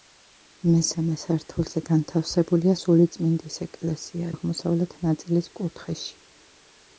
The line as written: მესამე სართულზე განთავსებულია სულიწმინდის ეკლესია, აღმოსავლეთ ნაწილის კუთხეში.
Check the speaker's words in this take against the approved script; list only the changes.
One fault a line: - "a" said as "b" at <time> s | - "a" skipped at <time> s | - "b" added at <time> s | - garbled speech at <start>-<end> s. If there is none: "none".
none